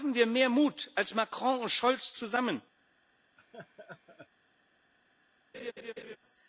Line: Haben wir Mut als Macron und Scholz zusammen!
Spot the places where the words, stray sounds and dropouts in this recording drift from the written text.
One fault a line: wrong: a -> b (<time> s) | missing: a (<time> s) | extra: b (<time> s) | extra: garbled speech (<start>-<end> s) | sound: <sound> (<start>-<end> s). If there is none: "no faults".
extra: mehr (0.2 s)
sound: laugh (3.4-4.3 s)
sound: laugh (5.5-6.2 s)